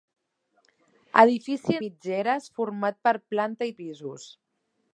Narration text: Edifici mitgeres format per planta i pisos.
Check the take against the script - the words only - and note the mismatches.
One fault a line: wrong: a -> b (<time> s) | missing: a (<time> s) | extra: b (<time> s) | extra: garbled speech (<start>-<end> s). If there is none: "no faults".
no faults